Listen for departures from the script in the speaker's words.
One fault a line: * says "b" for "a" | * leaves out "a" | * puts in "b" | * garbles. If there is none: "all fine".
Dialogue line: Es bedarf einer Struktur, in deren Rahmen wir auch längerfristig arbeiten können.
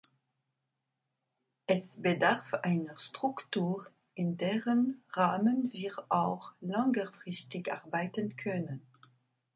all fine